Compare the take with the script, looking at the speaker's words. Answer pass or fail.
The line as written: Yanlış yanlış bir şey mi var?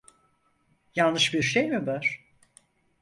fail